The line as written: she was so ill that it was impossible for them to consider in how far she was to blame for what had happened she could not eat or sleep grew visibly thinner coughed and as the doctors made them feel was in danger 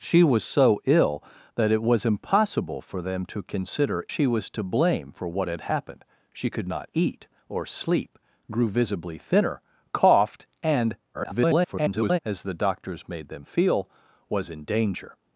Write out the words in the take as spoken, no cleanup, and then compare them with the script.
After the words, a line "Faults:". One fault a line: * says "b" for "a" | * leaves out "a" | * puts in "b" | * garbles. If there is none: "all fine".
she was so ill that it was impossible for them to consider she was to blame for what had happened she could not eat or sleep grew visibly thinner coughed and [garbled] as the doctors made them feel was in danger
Faults:
* leaves out "in how far"
* garbles